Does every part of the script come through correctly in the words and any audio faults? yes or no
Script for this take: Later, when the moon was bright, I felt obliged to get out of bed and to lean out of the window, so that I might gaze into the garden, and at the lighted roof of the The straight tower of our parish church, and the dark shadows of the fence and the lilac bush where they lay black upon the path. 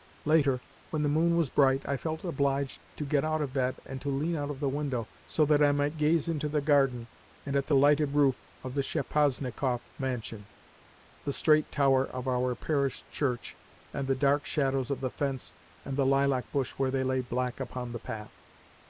no